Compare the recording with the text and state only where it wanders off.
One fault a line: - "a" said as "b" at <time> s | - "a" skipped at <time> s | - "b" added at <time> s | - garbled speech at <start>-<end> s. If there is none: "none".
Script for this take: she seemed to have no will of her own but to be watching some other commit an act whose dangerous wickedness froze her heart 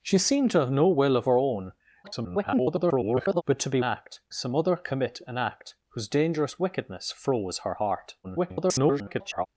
- garbled speech at 2.0-3.4 s
- "watching" said as "act" at 3.8 s
- garbled speech at 8.2-9.5 s